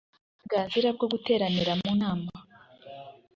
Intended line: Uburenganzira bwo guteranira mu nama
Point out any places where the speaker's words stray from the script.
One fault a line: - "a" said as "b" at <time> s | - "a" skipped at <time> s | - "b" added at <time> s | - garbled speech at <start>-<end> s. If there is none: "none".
none